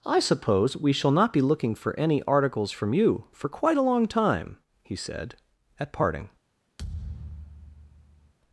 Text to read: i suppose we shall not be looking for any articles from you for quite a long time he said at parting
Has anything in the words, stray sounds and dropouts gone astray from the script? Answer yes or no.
yes